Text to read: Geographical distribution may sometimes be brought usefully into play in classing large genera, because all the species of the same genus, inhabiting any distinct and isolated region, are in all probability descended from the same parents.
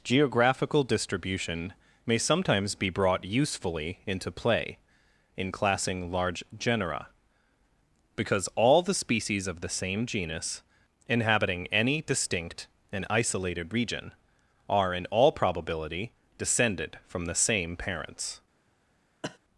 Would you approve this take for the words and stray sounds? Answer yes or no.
no